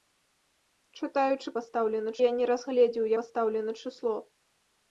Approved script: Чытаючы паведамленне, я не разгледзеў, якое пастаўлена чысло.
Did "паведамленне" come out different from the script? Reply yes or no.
yes